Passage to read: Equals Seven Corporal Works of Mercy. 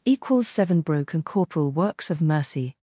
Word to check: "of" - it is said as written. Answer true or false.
true